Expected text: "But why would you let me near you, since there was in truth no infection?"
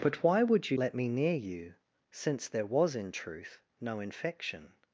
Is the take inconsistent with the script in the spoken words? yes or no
no